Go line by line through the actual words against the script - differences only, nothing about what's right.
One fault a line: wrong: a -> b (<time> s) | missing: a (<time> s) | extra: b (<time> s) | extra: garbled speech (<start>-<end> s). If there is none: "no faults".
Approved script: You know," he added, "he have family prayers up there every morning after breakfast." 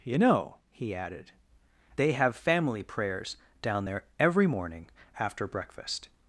wrong: he -> they (1.9 s)
wrong: up -> down (3.6 s)